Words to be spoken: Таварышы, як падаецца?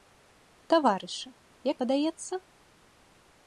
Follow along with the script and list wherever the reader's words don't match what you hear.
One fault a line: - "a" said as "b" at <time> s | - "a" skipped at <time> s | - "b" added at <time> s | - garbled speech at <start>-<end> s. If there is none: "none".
none